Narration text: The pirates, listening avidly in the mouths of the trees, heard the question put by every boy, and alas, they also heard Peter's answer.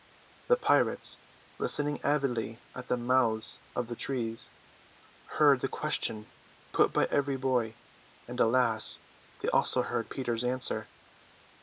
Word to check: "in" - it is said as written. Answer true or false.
false